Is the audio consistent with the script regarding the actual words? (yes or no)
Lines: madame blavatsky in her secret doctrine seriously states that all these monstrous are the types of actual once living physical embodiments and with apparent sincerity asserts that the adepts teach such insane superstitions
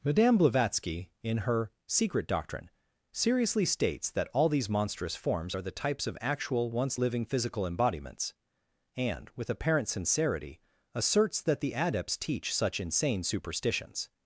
no